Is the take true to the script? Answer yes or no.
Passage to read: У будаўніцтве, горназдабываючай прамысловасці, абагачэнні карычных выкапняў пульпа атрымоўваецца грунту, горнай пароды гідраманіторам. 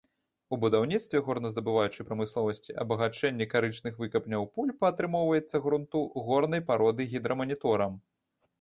yes